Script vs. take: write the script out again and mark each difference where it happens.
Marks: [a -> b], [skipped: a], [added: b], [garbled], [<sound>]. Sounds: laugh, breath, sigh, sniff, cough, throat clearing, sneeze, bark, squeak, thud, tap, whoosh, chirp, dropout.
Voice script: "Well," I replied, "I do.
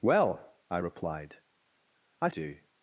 "Well," I replied, "I do.